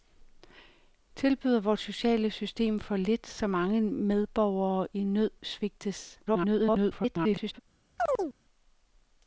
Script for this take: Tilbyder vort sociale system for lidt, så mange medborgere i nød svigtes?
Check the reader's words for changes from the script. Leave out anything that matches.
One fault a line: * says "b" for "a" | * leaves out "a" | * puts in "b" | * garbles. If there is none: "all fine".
* garbles